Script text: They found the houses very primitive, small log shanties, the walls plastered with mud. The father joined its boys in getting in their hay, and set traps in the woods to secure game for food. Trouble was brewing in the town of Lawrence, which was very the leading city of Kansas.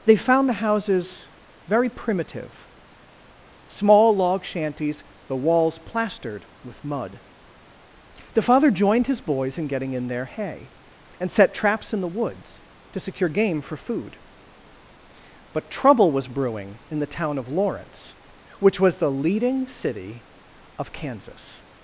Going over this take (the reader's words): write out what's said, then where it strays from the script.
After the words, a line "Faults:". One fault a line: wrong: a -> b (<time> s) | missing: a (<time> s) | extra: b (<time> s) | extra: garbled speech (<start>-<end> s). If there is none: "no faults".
They found the houses very primitive, small log shanties, the walls plastered with mud. The father joined his boys in getting in their hay, and set traps in the woods to secure game for food. But trouble was brewing in the town of Lawrence, which was the leading city of Kansas.
Faults:
wrong: its -> his (9.1 s)
extra: But (15.5 s)
missing: very (19.0 s)